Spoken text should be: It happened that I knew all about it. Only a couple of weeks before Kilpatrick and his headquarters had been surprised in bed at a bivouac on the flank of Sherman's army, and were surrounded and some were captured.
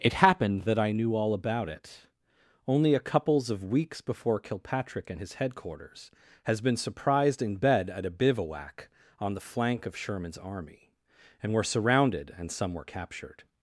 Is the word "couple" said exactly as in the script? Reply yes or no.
no